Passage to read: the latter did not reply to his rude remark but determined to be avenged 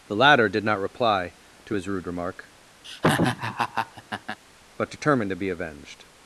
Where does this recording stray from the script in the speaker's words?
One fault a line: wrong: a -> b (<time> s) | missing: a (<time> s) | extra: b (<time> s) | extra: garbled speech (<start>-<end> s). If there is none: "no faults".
no faults